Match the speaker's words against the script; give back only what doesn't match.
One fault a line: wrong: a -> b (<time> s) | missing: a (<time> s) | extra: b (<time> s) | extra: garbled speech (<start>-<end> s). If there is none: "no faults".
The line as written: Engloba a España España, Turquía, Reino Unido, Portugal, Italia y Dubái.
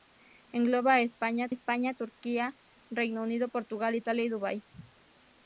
no faults